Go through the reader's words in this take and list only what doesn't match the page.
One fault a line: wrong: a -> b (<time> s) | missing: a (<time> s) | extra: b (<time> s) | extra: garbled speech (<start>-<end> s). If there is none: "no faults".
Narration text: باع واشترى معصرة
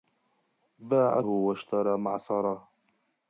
no faults